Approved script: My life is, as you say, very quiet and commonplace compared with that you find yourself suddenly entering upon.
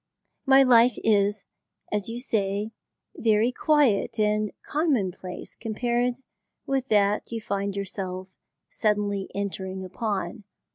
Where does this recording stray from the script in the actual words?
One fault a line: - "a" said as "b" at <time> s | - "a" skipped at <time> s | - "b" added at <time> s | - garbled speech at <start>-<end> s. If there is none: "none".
none